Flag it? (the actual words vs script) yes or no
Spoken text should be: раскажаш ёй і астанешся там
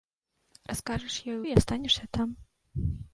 no